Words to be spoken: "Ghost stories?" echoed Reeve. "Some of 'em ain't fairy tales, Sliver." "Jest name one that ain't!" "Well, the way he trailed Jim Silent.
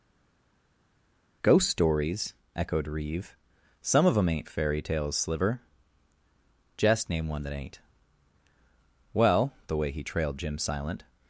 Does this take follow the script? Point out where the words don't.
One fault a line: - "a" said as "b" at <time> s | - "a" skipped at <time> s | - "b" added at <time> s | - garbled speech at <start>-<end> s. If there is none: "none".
none